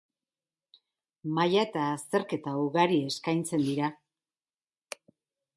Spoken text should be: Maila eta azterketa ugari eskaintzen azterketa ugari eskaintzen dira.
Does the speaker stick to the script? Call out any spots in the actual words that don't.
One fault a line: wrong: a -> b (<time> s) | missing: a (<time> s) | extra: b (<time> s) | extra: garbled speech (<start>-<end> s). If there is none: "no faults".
missing: azterketa ugari eskaintzen (3.7 s)